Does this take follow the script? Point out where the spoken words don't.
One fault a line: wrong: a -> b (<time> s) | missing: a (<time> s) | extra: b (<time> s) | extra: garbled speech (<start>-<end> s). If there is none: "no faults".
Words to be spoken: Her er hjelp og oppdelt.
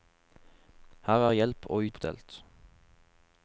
no faults